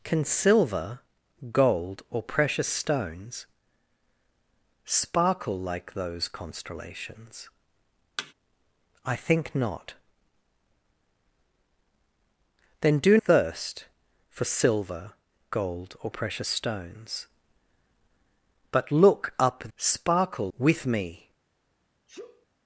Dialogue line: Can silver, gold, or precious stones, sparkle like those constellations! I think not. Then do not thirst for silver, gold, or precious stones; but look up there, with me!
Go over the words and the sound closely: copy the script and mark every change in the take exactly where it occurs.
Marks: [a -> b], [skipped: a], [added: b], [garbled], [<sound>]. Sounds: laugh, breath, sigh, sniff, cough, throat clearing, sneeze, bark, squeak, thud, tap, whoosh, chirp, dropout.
Can silver, gold, or precious stones, sparkle like those constellations! [thud] I think not. Then do [skipped: not] thirst for silver, gold, or precious stones; but look up [there, -> sparkle] with me! [sneeze]